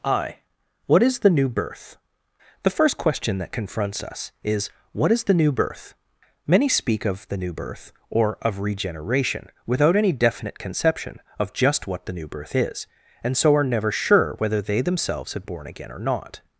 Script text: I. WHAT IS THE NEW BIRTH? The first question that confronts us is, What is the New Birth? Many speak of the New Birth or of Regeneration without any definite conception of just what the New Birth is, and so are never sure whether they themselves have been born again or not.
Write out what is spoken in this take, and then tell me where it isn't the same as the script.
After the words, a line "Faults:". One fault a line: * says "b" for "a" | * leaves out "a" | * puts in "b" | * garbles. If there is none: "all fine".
I. WHAT IS THE NEW BIRTH? The first question that confronts us is, What is the New Birth? Many speak of the New Birth or of Regeneration without any definite conception of just what the New Birth is, and so are never sure whether they themselves have born again or not.
Faults:
* leaves out "been"